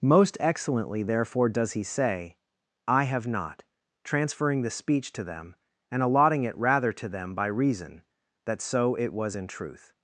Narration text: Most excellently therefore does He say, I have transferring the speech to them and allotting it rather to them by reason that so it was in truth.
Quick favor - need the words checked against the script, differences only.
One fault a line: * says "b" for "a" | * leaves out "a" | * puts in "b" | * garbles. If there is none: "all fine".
* puts in "not"